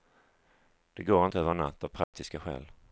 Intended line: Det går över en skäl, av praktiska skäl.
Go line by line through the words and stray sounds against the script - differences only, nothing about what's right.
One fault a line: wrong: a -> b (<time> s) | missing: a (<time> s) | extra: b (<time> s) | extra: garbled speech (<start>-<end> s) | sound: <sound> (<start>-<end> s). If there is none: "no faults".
extra: inte (1.2 s)
wrong: skäl -> natt (1.6 s)
sound: dropout (2.0-2.1 s)